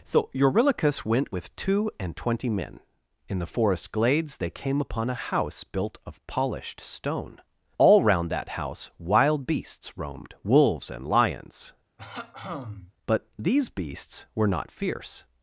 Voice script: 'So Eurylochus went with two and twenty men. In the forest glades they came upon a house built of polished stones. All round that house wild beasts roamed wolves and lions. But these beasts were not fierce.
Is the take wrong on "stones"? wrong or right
wrong